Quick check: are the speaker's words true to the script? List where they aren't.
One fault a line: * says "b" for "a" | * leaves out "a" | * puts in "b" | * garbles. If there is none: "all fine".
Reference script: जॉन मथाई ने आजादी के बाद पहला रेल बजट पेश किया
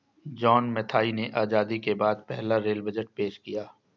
all fine